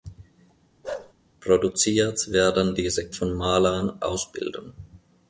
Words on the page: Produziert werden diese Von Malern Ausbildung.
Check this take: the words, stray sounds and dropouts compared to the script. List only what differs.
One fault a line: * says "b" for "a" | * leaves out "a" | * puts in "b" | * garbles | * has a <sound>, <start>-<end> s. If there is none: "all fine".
* has a bark, 0.8-1.1 s